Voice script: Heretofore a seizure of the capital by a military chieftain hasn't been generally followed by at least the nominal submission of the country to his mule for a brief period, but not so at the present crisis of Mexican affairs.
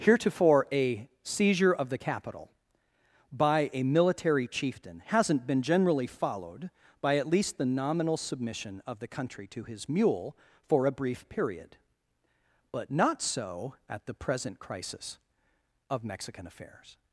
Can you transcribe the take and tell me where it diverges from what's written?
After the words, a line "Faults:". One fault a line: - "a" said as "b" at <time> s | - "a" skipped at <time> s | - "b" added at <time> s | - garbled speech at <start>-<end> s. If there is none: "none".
Heretofore a seizure of the capital by a military chieftain hasn't been generally followed by at least the nominal submission of the country to his mule for a brief period, but not so at the present crisis of Mexican affairs.
Faults:
none